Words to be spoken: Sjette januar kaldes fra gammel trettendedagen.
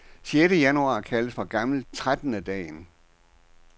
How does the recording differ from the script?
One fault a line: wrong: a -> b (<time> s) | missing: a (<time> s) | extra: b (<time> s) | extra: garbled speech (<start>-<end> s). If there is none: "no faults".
no faults